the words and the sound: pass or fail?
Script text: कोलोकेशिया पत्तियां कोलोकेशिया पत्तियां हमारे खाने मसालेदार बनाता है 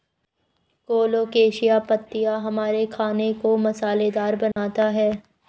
fail